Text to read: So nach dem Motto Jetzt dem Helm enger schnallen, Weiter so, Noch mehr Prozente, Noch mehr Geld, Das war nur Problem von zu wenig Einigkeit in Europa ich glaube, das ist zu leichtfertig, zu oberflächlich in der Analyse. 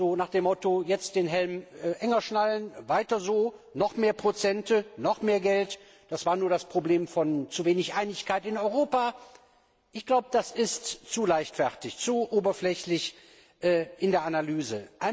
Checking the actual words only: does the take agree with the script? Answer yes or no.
no